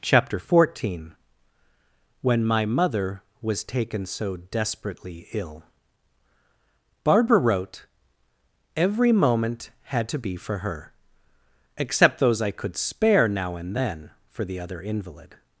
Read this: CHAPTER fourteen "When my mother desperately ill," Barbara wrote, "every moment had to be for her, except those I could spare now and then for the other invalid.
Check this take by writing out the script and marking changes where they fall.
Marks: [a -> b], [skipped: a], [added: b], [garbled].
CHAPTER fourteen "When my mother [added: was taken so] desperately ill," Barbara wrote, "every moment had to be for her, except those I could spare now and then for the other invalid.